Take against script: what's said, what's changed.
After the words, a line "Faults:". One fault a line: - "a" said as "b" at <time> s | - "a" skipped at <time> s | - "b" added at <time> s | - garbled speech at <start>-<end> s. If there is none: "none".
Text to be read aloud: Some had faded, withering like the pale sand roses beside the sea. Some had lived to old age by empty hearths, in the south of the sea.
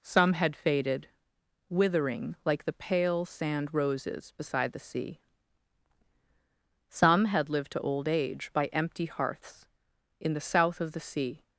Some had faded, withering like the pale sand roses beside the sea. Some had lived to old age by empty hearths, in the south of the sea.
Faults:
none